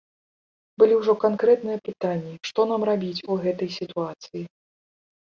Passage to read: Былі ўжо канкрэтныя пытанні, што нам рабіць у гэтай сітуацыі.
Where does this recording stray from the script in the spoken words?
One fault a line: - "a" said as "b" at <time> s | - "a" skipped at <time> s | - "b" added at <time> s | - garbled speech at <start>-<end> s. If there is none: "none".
none